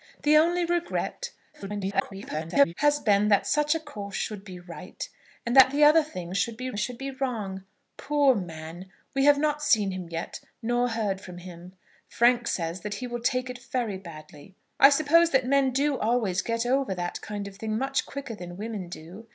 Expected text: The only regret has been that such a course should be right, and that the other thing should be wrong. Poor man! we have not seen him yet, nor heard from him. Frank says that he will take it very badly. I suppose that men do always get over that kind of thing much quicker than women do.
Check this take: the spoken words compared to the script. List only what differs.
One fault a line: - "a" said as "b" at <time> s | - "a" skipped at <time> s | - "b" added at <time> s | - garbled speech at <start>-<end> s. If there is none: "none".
- garbled speech at 1.5-2.7 s
- "should be" added at 6.8 s